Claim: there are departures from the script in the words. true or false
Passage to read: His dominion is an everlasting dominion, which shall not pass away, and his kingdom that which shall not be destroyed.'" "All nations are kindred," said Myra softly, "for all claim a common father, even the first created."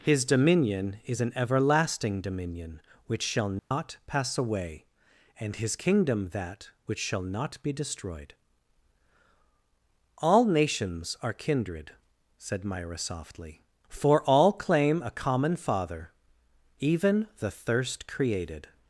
true